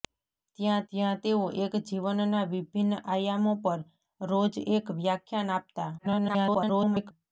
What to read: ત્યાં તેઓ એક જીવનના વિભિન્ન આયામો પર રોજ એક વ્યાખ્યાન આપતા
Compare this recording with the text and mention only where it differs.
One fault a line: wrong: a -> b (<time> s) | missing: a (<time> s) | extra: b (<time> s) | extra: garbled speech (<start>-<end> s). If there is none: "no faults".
extra: ત્યાં (0.9 s)
extra: garbled speech (6.0-7.1 s)